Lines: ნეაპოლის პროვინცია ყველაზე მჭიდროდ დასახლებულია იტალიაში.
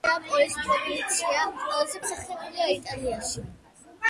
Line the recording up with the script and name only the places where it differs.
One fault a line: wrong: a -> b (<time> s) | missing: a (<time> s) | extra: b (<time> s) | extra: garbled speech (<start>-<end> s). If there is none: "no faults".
missing: მჭიდროდ (2.0 s)